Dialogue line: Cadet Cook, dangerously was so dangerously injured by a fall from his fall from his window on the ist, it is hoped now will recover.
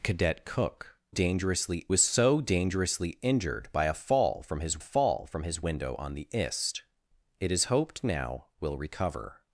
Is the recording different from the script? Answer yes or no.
no